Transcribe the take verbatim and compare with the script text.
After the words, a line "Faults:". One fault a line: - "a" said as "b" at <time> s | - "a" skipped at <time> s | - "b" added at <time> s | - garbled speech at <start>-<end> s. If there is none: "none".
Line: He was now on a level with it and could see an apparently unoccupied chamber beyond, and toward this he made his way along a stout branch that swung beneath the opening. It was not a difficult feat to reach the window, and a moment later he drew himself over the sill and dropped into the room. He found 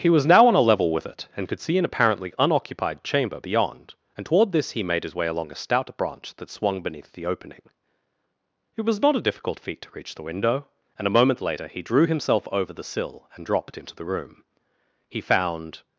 He was now on a level with it and could see an apparently unoccupied chamber beyond, and toward this he made his way along a stout branch that swung beneath the opening. It was not a difficult feat to reach the window, and a moment later he drew himself over the sill and dropped into the room. He found
Faults:
none